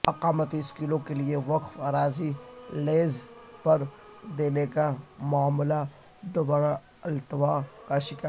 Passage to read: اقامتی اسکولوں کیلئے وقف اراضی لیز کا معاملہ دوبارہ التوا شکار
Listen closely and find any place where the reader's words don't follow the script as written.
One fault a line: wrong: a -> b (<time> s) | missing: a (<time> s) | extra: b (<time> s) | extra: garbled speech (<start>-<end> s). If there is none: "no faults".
extra: پر دینے (3.6 s)
extra: کا (7.9 s)